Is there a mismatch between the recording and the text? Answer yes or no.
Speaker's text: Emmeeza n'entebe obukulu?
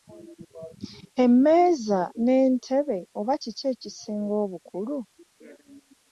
yes